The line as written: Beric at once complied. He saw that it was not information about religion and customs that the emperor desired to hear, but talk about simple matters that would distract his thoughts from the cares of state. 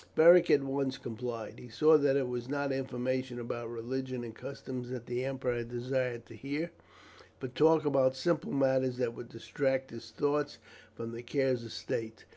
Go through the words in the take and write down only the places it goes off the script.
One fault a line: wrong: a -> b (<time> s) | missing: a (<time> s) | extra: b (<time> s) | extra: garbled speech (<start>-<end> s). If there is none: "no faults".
no faults